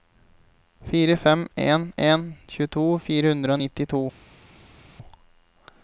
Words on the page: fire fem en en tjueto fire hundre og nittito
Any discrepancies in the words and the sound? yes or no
no